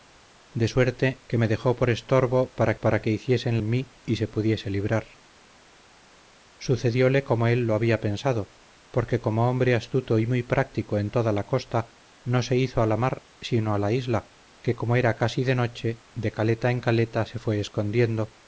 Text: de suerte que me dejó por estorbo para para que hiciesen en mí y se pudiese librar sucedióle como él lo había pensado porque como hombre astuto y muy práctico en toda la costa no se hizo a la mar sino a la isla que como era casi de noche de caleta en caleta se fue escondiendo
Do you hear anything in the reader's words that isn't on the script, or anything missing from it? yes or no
no